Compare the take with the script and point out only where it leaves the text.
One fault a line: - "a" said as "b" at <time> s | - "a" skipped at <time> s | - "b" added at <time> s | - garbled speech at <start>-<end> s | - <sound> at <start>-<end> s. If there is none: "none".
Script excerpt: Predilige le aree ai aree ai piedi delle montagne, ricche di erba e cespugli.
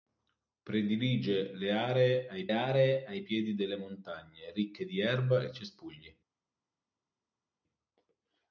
none